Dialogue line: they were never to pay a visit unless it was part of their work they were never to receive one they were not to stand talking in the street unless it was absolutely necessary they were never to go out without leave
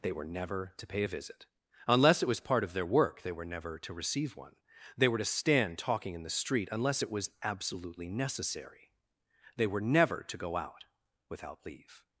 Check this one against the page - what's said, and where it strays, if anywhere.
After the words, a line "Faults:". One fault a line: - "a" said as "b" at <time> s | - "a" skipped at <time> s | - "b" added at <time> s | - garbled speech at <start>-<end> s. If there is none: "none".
they were never to pay a visit unless it was part of their work they were never to receive one they were to stand talking in the street unless it was absolutely necessary they were never to go out without leave
Faults:
- "not" skipped at 5.2 s